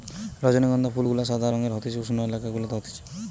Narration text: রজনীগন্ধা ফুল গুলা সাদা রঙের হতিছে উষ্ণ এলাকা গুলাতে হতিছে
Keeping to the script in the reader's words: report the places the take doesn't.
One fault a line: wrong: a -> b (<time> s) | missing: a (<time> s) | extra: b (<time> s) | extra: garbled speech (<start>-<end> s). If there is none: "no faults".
no faults